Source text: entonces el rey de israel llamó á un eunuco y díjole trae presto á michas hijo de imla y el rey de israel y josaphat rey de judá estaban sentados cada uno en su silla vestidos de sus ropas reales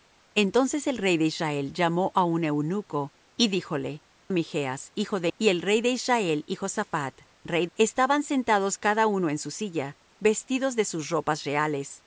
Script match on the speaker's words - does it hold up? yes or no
no